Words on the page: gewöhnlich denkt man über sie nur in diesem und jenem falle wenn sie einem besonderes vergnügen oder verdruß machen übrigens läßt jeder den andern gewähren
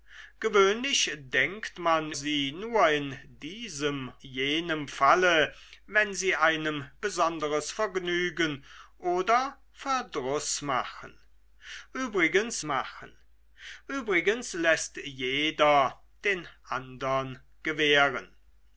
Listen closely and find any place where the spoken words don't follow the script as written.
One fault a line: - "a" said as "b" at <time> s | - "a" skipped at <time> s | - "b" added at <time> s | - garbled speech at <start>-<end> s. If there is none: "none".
- "über" skipped at 2.1 s
- "und" skipped at 4.1 s
- "machen übrigens" added at 12.6 s